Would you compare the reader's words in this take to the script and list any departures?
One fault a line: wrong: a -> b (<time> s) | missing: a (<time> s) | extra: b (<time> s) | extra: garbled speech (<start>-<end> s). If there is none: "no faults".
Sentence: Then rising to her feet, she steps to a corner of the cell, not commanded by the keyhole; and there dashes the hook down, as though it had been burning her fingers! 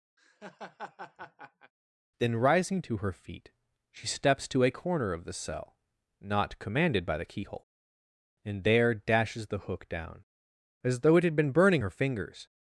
no faults